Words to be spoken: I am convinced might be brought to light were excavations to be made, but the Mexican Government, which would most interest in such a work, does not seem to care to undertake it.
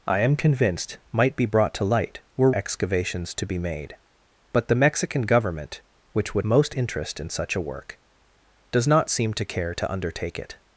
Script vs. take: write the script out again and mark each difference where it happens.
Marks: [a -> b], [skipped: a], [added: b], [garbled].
I am convinced might be brought to light were excavations to be made, but the Mexican Government, which would most interest in such a work, does not seem to care to undertake it.